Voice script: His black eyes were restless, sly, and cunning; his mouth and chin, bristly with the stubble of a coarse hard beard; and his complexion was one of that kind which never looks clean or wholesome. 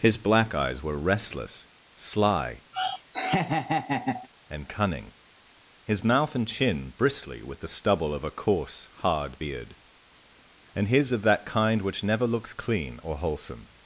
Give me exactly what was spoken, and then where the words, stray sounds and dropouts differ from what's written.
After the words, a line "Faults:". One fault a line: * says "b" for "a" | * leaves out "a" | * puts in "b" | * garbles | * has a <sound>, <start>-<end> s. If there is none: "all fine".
His black eyes were restless, sly, and cunning; his mouth and chin, bristly with the stubble of a coarse hard beard; and his of that kind which never looks clean or wholesome.
Faults:
* has a laugh, 2.7-4.3 s
* leaves out "complexion was one"